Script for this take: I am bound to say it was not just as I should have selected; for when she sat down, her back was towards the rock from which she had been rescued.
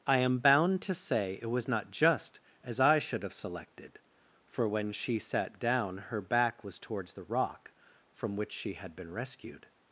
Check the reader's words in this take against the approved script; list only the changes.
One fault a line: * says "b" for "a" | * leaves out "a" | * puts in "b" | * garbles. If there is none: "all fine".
all fine